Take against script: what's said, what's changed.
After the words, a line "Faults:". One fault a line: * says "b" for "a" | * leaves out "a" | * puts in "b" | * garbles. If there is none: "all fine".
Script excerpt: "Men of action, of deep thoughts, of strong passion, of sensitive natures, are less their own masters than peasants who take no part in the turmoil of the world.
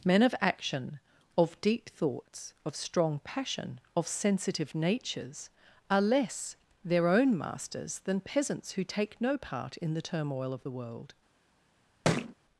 "Men of action, of deep thoughts, of strong passion, of sensitive natures, are less their own masters than peasants who take no part in the turmoil of the world.
Faults:
all fine